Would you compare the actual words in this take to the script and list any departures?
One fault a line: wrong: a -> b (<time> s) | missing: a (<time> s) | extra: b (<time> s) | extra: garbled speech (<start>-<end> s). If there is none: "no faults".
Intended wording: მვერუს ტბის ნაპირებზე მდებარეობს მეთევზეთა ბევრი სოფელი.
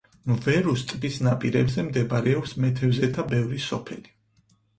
no faults